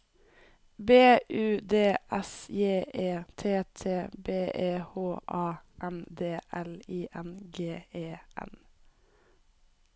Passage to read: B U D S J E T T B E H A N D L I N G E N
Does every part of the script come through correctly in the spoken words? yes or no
yes